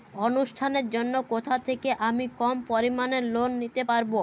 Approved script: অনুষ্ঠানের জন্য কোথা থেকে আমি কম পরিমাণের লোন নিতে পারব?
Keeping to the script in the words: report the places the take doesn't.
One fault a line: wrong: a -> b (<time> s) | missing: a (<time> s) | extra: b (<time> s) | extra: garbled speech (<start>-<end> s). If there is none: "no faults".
no faults